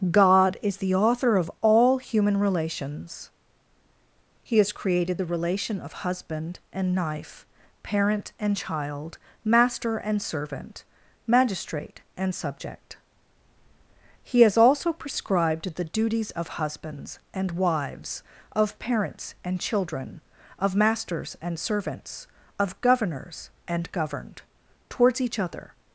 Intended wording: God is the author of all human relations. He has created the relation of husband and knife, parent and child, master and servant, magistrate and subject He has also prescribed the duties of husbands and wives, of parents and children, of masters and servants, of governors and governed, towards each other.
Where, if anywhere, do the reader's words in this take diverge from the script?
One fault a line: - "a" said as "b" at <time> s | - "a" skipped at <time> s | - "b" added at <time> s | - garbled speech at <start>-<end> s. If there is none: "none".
none